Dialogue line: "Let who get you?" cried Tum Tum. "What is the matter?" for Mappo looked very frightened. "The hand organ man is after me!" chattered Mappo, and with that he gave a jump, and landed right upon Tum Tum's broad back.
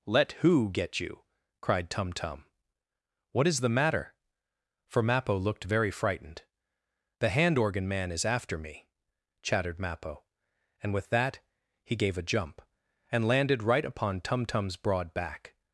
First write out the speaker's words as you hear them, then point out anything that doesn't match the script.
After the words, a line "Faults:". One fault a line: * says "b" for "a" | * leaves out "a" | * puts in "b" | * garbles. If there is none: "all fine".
"Let who get you?" cried Tum Tum. "What is the matter?" for Mappo looked very frightened. "The hand organ man is after me!" chattered Mappo, and with that he gave a jump, and landed right upon Tum Tum's broad back.
Faults:
all fine